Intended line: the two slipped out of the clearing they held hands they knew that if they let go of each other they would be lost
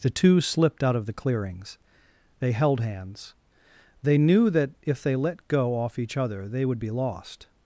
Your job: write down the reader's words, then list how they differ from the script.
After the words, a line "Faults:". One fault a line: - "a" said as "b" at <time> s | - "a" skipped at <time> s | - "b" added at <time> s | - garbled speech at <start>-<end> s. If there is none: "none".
the two slipped out of the clearings they held hands they knew that if they let go off each other they would be lost
Faults:
- "clearing" said as "clearings" at 1.1 s
- "of" said as "off" at 5.8 s